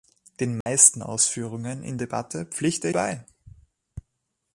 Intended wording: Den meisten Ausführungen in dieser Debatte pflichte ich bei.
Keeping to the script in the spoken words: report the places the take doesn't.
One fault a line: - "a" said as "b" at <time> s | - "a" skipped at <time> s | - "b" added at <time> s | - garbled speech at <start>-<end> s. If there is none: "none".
- "dieser" skipped at 2.0 s
- "ich" skipped at 2.9 s